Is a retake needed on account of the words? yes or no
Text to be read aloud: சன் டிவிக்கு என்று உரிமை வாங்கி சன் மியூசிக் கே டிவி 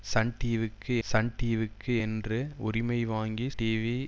yes